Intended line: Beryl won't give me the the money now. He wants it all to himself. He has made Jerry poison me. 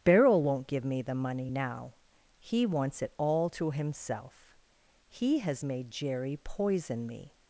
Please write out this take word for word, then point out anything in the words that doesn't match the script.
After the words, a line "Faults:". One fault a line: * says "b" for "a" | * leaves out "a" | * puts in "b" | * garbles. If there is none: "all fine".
Beryl won't give me the money now. He wants it all to himself. He has made Jerry poison me.
Faults:
* leaves out "the"